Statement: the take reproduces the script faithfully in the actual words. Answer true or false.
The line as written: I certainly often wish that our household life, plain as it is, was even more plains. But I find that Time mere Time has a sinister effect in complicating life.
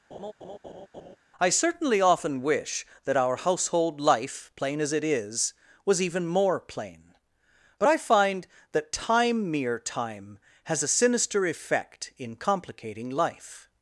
false